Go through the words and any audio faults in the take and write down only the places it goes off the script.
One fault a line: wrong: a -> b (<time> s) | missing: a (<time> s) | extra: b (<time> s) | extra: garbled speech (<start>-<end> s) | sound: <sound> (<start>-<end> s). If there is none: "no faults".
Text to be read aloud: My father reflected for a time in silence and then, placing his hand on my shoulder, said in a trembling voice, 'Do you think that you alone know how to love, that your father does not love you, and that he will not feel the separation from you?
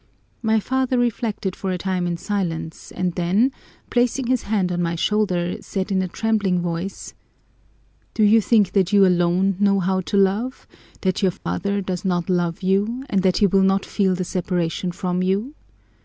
sound: dropout (11.4-11.5 s)